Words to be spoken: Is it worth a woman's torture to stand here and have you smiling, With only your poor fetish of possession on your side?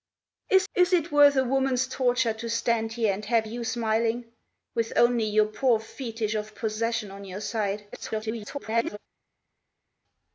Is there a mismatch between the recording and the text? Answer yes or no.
yes